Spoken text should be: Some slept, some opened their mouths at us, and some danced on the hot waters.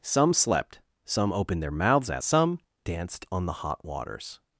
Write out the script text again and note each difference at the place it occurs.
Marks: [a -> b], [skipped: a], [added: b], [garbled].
Some slept, some opened their mouths at [skipped: us, and] some danced on the hot waters.